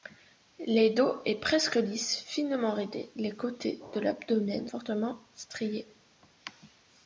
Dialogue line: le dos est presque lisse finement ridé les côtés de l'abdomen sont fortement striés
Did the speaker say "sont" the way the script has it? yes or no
no